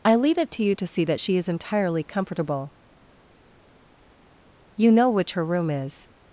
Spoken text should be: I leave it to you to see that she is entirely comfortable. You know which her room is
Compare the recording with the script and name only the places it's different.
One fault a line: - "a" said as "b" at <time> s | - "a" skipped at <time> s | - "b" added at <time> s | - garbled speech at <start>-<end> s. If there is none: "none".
none